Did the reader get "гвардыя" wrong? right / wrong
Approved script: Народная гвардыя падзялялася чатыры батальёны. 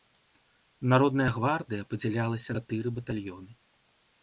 right